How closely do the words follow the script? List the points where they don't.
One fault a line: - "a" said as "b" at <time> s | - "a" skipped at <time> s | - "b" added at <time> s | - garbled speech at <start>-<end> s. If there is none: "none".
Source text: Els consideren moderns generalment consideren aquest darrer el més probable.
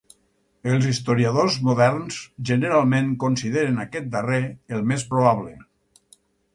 - "consideren" said as "historiadors" at 0.9 s